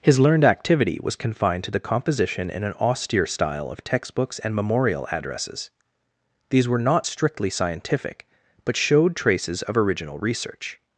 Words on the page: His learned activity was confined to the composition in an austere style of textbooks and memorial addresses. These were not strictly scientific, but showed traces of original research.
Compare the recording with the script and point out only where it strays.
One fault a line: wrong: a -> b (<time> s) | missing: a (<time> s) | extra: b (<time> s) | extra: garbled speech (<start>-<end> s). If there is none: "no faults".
no faults